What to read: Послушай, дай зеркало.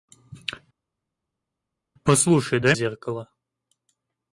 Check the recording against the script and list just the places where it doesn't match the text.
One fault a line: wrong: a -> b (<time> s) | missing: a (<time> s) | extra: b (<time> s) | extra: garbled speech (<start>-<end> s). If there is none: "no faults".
no faults